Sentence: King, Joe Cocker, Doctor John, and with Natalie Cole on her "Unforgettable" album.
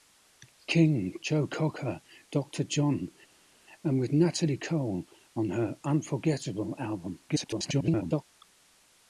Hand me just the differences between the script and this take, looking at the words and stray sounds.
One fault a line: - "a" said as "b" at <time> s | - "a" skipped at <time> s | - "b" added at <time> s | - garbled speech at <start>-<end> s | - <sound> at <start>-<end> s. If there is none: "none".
- garbled speech at 7.3-8.2 s